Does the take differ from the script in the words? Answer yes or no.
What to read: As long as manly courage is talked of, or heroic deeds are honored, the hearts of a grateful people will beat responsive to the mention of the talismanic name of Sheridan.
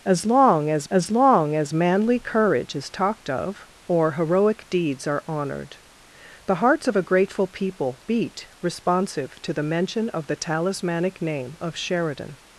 yes